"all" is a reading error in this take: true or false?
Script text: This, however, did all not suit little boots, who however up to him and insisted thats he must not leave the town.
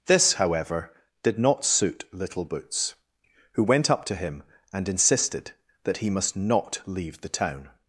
true